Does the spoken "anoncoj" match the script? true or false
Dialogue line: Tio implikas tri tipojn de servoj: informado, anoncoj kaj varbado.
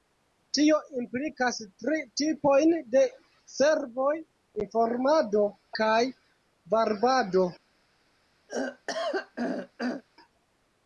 false